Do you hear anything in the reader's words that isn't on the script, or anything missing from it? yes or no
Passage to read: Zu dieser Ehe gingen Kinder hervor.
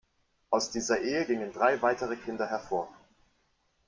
yes